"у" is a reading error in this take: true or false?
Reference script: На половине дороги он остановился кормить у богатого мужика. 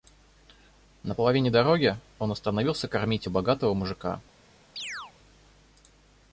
false